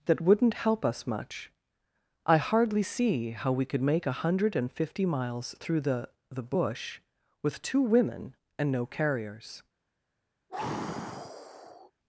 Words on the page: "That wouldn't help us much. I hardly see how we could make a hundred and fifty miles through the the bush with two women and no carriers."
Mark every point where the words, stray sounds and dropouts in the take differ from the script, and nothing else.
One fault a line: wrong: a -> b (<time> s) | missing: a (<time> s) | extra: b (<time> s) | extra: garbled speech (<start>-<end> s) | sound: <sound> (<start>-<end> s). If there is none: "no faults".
sound: sigh (10.5-11.9 s)